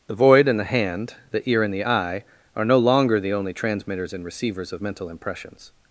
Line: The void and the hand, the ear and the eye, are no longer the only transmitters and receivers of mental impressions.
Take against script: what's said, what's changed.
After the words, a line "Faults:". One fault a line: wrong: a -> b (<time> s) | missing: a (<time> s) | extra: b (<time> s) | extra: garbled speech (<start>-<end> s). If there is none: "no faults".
The void and the hand, the ear and the eye, are no longer the only transmitters and receivers of mental impressions.
Faults:
no faults